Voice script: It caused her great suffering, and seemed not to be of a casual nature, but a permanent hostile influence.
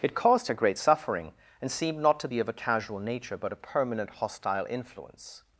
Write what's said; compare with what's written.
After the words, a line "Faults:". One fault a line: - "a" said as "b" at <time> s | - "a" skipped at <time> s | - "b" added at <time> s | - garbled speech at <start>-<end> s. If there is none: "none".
It caused her great suffering, and seemed not to be of a casual nature, but a permanent hostile influence.
Faults:
none